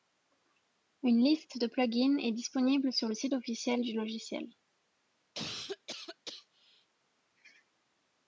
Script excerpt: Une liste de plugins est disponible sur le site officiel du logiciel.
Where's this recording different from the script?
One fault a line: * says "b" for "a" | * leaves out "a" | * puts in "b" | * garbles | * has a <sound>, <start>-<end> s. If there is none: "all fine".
* has a cough, 5.3-6.9 s